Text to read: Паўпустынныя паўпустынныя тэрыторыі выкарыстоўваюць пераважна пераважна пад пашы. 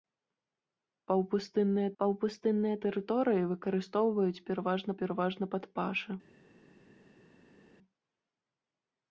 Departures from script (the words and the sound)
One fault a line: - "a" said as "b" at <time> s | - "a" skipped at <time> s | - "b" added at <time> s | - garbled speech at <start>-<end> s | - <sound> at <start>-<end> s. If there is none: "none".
none